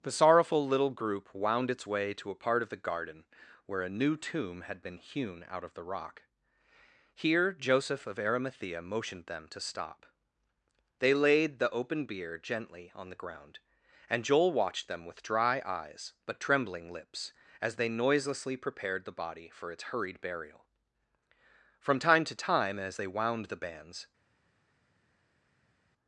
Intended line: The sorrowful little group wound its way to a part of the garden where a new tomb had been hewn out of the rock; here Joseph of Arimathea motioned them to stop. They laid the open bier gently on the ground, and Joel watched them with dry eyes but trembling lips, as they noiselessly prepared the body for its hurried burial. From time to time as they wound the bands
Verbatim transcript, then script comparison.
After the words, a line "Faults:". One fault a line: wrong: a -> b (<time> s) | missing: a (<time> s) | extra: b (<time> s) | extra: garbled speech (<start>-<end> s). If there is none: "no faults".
The sorrowful little group wound its way to a part of the garden where a new tomb had been hewn out of the rock; here Joseph of Arimathea motioned them to stop. They laid the open bier gently on the ground, and Joel watched them with dry eyes but trembling lips, as they noiselessly prepared the body for its hurried burial. From time to time as they wound the bands
Faults:
no faults